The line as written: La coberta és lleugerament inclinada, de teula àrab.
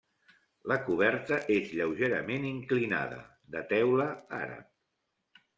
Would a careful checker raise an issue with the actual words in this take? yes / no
no